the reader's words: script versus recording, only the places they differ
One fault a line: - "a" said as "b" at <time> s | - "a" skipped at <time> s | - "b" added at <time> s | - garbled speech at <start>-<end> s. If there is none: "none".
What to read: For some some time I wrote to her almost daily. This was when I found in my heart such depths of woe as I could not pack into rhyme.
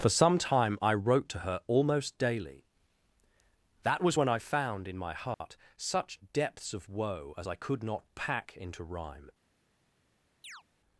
- "some" skipped at 0.4 s
- "This" said as "That" at 3.8 s